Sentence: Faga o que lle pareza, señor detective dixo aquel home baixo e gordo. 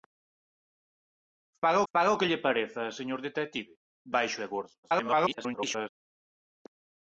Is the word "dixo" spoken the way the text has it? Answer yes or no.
no